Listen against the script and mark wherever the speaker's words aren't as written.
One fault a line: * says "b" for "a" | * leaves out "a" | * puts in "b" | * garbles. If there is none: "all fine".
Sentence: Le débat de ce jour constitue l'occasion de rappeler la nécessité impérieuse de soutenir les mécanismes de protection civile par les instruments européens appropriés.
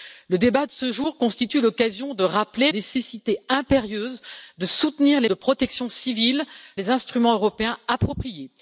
* leaves out "la"
* leaves out "mécanismes"
* leaves out "par"